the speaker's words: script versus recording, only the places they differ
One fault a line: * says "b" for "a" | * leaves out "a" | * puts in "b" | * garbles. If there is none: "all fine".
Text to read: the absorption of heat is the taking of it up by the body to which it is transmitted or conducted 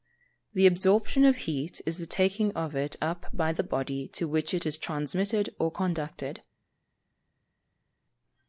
all fine